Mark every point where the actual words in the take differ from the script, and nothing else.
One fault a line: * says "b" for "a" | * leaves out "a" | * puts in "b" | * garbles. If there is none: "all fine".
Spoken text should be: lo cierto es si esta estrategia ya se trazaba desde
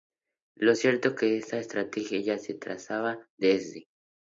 * says "que" for "si"